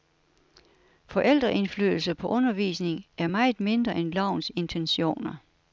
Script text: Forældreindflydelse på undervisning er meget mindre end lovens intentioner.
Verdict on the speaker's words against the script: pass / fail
pass